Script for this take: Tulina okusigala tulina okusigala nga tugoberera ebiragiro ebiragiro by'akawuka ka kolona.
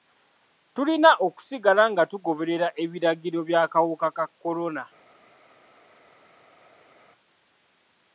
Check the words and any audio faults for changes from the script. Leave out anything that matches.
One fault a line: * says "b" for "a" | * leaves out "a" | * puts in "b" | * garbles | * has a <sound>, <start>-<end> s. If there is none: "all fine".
* leaves out "tulina okusigala"
* leaves out "ebiragiro"